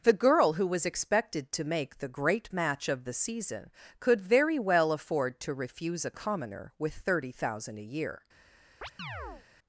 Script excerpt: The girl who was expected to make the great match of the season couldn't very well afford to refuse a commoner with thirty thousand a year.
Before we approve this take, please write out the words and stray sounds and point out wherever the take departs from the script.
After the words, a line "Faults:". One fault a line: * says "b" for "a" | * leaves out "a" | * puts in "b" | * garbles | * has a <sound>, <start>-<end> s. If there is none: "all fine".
The girl who was expected to make the great match of the season could very well afford to refuse a commoner with thirty thousand a year.
Faults:
* says "could" for "couldn't"
* has a chirp, 8.8-9.5 s